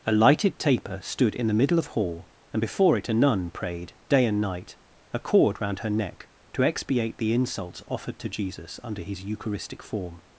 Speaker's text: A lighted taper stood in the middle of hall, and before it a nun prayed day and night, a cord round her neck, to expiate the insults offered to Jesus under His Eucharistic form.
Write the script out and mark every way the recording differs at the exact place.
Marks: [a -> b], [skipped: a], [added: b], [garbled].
A lighted taper stood in the middle of hall, and before it a nun prayed day and night, a cord round her neck, to expiate the insults offered to Jesus under His Eucharistic form.